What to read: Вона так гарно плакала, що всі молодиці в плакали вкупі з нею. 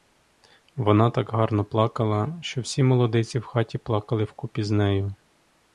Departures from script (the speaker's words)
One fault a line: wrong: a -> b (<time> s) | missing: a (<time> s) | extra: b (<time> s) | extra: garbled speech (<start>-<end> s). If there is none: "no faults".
extra: хаті (3.4 s)